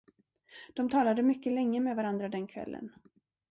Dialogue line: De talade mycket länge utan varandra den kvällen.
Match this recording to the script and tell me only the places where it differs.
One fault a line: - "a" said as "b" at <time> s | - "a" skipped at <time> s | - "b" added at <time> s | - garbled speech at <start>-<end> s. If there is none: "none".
- "utan" said as "med" at 1.8 s